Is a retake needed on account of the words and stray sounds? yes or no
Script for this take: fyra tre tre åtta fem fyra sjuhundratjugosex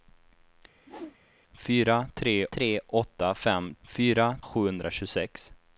yes